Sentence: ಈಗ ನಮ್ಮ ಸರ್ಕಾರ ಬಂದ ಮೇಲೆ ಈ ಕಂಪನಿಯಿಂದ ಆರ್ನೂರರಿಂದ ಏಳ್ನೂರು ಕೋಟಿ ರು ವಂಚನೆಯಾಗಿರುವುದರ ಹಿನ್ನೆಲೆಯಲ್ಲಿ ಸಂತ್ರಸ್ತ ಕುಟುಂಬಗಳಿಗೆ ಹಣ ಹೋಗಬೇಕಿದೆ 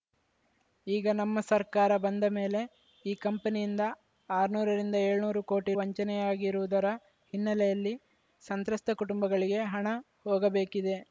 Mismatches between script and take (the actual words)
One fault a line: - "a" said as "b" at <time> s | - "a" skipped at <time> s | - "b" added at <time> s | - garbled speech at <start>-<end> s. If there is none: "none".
- "ರು" skipped at 5.7 s